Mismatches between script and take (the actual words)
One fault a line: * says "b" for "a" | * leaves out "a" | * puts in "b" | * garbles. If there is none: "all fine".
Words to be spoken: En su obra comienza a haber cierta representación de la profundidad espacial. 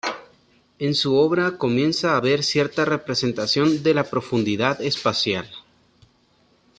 all fine